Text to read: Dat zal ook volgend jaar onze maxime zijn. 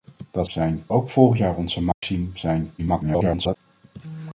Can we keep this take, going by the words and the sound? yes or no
no